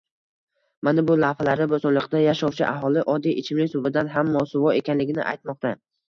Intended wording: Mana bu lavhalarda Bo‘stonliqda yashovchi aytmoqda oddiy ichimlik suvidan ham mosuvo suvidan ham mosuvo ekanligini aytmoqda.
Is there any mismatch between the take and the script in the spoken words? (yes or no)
yes